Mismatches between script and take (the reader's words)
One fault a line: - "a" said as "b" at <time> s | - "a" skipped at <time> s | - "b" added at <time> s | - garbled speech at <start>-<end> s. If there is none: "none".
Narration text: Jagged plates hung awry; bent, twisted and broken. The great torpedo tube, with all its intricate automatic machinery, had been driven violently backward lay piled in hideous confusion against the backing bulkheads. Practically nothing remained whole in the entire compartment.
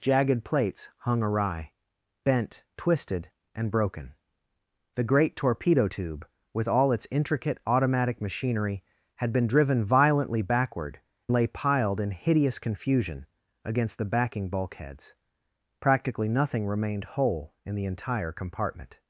none